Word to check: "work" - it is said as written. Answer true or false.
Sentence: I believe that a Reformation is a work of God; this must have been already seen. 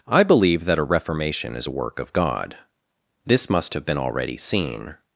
true